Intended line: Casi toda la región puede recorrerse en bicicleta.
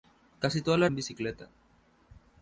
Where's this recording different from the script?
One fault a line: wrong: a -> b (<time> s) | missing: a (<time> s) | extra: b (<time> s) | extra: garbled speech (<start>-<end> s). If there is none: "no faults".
missing: región puede recorrerse (0.9 s)